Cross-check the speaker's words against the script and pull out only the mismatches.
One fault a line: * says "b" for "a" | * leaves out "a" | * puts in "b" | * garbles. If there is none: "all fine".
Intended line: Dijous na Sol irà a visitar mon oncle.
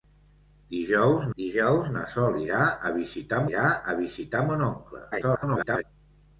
* puts in "dijous"
* puts in "irà a visitar"
* garbles